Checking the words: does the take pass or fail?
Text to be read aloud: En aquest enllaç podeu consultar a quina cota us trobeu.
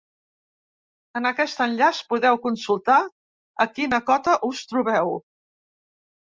pass